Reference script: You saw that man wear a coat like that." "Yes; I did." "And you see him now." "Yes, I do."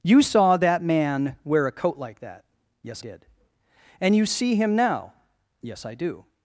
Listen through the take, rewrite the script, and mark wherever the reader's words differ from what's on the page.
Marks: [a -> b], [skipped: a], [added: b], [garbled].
You saw that man wear a coat like that." "Yes; [skipped: I] did." "And you see him now." "Yes, I do."